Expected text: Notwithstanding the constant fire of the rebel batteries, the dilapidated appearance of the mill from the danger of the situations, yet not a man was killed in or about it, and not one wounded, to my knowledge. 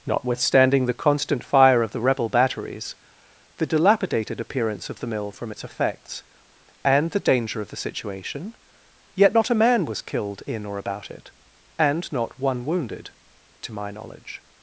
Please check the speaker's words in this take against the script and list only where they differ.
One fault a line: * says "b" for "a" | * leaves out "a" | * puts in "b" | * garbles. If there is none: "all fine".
* puts in "its effects and"
* says "situation" for "situations"